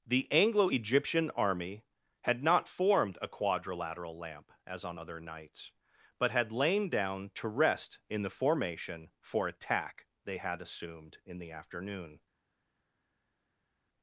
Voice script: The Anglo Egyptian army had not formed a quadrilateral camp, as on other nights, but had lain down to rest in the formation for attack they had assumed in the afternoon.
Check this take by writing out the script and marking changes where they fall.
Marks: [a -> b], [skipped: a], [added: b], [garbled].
The Anglo Egyptian army had not formed a quadrilateral [camp, -> lamp] as on other nights, but had lain down to rest in the formation for attack they had assumed in the afternoon.